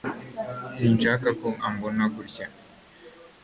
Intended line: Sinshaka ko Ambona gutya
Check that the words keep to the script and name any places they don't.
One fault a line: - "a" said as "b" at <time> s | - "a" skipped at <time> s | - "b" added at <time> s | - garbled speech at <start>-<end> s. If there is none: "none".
none